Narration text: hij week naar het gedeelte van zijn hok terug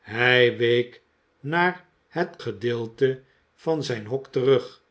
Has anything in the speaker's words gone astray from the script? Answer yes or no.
no